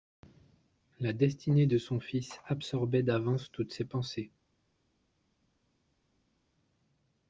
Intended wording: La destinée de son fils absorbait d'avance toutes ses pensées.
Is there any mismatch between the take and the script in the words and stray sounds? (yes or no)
no